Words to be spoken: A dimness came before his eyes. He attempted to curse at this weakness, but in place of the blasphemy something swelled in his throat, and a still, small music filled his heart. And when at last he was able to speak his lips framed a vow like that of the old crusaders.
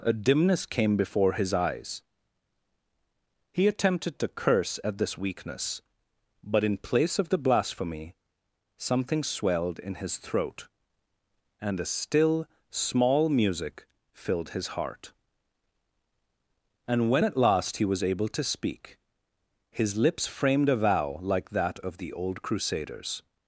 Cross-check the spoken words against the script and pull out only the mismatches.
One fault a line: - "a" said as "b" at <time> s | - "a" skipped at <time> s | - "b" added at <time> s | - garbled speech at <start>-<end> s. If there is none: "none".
none